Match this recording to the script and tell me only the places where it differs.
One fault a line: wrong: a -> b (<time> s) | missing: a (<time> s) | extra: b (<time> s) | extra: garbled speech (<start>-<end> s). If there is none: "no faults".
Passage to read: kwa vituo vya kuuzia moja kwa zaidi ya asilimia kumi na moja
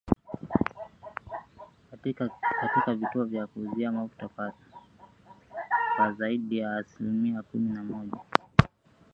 wrong: kwa -> katika (2.6 s)
wrong: moja -> mafuta (3.9 s)